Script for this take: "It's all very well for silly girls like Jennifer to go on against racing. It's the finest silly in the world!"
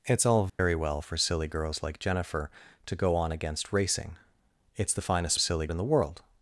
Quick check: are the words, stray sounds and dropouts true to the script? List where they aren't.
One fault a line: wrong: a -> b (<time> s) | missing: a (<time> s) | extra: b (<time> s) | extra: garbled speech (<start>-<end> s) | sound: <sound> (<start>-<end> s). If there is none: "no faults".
sound: dropout (0.5-0.6 s)